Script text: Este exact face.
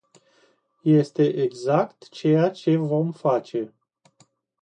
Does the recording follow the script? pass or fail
fail